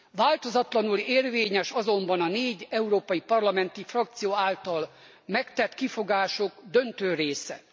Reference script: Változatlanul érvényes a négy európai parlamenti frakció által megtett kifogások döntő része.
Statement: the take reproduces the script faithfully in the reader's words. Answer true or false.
false